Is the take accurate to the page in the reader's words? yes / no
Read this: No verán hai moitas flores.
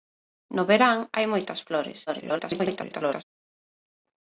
no